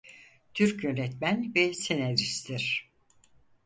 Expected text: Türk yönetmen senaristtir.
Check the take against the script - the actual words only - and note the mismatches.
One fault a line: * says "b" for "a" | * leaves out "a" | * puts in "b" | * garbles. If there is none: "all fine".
* puts in "ve"